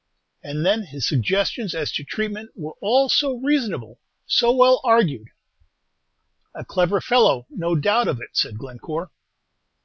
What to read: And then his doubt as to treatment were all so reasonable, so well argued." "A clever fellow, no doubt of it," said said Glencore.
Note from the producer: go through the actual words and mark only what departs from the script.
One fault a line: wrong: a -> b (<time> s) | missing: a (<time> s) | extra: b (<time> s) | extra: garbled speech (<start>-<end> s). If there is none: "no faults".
wrong: doubt -> suggestions (1.1 s)
missing: said (8.6 s)